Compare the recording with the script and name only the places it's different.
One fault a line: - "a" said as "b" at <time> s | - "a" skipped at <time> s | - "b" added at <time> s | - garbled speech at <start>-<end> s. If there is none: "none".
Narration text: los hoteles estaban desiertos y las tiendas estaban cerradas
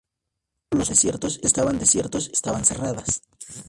- "hoteles" said as "desiertos" at 0.9 s
- "y las tiendas" skipped at 2.3 s